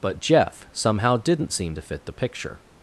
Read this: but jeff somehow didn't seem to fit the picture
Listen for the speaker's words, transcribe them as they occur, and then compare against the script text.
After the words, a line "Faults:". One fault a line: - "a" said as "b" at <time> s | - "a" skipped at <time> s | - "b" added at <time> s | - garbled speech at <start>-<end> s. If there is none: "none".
but jeff somehow didn't seem to fit the picture
Faults:
none